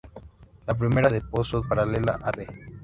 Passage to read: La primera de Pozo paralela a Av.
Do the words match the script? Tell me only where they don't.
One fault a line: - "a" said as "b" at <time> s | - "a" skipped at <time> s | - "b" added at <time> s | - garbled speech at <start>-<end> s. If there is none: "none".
none